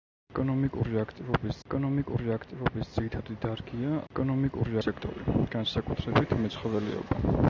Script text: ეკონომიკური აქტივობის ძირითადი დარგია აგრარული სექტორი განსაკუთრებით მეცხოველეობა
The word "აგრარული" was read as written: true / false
false